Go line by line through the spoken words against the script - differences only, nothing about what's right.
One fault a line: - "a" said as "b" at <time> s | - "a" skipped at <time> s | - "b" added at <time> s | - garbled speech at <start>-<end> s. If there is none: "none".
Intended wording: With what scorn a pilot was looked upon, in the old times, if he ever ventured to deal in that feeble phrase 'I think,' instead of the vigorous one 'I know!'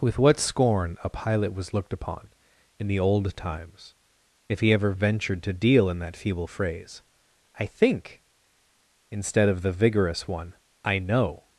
none